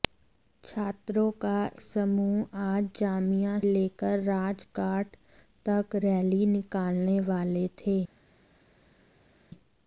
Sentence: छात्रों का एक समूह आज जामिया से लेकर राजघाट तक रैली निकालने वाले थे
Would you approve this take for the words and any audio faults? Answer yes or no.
no